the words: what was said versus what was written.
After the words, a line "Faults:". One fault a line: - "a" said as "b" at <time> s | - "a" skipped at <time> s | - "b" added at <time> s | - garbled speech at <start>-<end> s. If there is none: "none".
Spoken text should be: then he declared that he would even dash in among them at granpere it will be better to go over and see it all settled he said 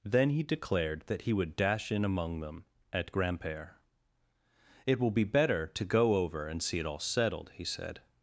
then he declared that he would dash in among them at granpere it will be better to go over and see it all settled he said
Faults:
- "even" skipped at 1.6 s